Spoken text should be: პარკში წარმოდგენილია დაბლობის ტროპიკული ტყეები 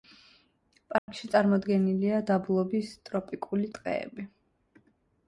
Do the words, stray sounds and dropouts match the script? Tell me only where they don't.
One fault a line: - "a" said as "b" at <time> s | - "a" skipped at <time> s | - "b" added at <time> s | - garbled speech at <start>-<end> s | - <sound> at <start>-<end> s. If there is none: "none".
- dropout at 1.0-1.1 s